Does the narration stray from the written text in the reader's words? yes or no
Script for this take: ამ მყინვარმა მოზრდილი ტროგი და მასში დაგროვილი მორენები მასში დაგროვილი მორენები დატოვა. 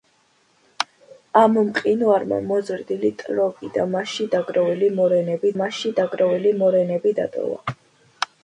no